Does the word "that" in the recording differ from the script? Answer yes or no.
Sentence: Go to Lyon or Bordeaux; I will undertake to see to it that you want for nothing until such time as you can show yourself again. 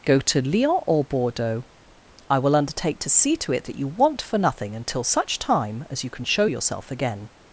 no